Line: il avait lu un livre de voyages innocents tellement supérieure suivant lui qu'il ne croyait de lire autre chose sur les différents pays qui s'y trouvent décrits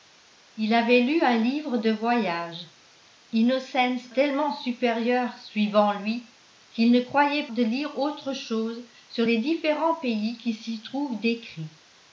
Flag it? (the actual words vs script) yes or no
no